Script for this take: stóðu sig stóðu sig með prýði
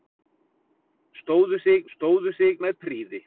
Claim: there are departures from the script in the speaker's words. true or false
false